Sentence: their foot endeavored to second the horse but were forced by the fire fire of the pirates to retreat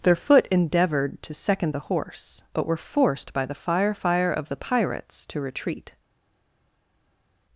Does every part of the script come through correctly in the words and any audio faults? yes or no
yes